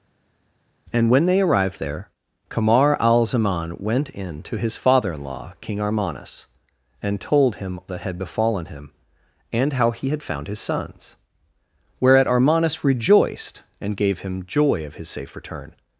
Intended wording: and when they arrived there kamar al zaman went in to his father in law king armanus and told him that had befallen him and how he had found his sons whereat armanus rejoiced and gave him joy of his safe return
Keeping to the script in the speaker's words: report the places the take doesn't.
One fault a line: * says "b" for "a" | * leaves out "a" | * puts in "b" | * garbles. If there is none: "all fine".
all fine